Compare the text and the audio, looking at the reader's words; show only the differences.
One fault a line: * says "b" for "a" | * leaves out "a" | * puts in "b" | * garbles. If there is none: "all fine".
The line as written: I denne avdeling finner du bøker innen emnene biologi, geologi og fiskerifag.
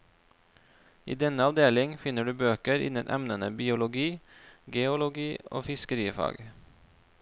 all fine